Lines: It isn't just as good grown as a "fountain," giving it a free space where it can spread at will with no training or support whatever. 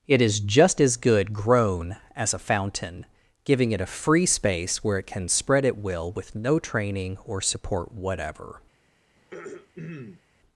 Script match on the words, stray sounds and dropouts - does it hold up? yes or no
no